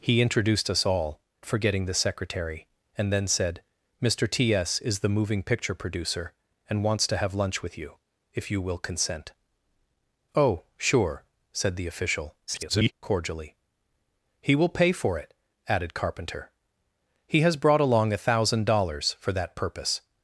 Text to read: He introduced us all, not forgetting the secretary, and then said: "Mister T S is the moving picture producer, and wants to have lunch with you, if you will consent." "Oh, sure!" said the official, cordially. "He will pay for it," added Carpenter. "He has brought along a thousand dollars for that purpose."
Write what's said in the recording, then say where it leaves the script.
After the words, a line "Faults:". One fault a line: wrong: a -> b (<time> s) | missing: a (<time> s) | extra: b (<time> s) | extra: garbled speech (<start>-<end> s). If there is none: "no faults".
He introduced us all, forgetting the secretary, and then said: "Mister T S is the moving picture producer, and wants to have lunch with you, if you will consent." "Oh, sure!" said the official, [garbled] cordially. "He will pay for it," added Carpenter. "He has brought along a thousand dollars for that purpose."
Faults:
missing: not (1.2 s)
extra: garbled speech (12.5-12.9 s)